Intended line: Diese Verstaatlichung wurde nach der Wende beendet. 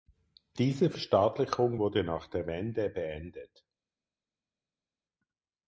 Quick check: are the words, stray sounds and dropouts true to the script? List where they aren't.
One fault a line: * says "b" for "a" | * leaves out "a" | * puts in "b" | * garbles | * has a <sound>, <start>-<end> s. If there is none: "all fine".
all fine